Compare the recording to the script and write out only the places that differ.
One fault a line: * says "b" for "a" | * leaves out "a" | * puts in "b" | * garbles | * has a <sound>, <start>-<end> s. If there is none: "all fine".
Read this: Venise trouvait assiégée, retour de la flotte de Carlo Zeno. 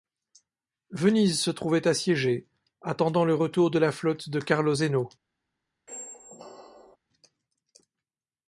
* puts in "se"
* puts in "attendant le"
* has a squeak, 5.9-7.0 s